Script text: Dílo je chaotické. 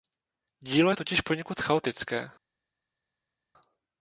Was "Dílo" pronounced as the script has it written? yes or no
yes